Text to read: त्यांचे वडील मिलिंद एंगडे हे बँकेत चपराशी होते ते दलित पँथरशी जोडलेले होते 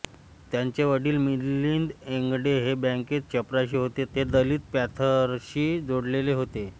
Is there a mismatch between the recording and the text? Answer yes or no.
no